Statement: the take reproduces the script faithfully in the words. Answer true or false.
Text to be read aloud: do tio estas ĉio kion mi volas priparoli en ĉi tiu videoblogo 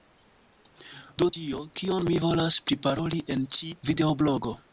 false